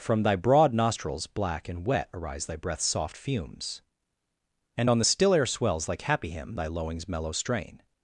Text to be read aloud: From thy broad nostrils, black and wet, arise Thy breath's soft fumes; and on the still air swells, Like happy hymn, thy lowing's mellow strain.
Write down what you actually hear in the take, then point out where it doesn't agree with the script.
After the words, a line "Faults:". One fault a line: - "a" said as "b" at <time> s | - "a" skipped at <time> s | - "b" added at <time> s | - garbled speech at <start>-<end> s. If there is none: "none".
From thy broad nostrils, black and wet, arise Thy breath's soft fumes; and on the still air swells, Like happy hymn, thy lowing's mellow strain.
Faults:
none